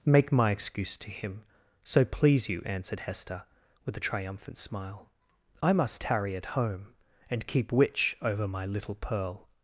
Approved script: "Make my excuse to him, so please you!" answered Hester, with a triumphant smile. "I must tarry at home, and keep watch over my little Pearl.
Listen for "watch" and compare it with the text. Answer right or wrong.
wrong